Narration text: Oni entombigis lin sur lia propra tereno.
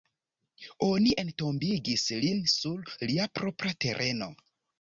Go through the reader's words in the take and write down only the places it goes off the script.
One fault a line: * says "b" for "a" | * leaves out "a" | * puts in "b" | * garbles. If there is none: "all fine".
all fine